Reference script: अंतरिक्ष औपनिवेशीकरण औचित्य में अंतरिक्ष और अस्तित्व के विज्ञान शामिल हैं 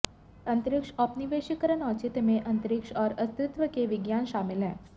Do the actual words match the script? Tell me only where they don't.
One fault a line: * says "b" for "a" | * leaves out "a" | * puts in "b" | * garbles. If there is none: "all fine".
all fine